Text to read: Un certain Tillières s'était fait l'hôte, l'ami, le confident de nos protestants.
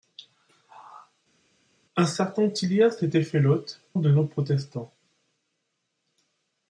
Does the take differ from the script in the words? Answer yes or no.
yes